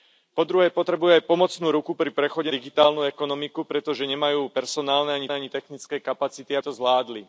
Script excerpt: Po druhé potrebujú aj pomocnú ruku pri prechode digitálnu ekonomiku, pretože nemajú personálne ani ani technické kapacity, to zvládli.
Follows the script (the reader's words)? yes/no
yes